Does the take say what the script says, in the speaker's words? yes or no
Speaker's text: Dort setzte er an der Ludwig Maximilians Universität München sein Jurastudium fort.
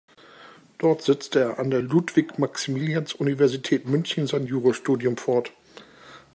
yes